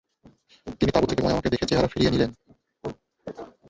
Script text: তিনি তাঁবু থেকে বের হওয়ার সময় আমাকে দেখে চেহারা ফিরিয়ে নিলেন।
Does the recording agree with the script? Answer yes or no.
no